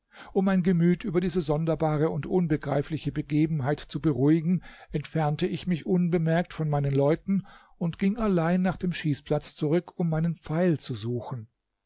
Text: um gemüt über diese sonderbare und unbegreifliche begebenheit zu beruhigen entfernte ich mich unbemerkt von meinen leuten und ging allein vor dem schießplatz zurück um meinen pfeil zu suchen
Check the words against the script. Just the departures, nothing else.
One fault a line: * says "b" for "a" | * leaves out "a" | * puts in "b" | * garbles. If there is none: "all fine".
* puts in "mein"
* says "nach" for "vor"